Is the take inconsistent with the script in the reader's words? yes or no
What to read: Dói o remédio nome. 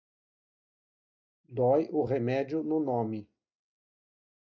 yes